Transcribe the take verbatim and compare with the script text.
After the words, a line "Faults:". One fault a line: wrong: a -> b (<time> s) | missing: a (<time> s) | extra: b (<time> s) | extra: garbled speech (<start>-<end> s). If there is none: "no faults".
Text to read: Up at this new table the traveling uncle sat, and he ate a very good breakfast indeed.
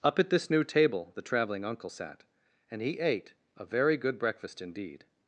Up at this new table the traveling uncle sat, and he ate a very good breakfast indeed.
Faults:
no faults